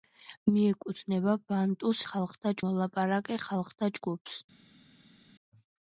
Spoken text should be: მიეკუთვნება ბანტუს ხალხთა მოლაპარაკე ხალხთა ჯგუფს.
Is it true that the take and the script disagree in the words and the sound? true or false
false